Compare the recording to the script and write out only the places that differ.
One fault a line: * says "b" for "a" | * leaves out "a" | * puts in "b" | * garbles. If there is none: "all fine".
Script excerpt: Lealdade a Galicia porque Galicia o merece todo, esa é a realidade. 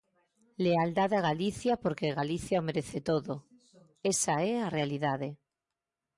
all fine